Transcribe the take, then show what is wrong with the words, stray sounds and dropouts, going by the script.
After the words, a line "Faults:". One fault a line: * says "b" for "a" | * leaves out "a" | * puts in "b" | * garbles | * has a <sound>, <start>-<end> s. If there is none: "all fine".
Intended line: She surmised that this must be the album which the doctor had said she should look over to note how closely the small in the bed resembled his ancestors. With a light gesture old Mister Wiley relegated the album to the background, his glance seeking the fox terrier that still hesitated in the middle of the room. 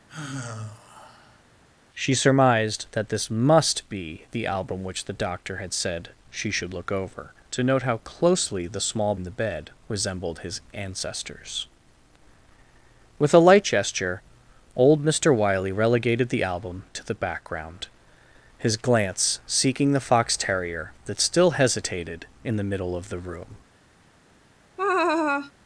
She surmised that this must be the album which the doctor had said she should look over to note how closely the small in the bed resembled his ancestors. With a light gesture old Mister Wiley relegated the album to the background, his glance seeking the fox terrier that still hesitated in the middle of the room.
Faults:
* has a sigh, 0.1-1.4 s
* has a laugh, 24.8-25.5 s